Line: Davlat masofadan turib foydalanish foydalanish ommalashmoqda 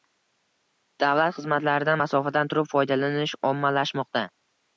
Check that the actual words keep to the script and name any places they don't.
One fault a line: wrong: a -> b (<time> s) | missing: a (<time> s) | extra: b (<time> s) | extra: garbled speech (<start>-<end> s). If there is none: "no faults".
extra: xizmatlaridan (1.4 s)
missing: foydalanish (3.4 s)